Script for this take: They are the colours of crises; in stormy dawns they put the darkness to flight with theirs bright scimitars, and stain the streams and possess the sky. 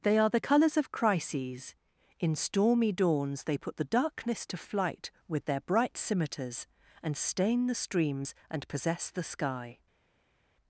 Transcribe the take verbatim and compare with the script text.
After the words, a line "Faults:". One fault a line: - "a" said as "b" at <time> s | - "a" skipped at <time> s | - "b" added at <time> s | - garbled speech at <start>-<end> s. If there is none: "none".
They are the colours of crises; in stormy dawns they put the darkness to flight with their bright scimitars, and stain the streams and possess the sky.
Faults:
- "theirs" said as "their" at 5.5 s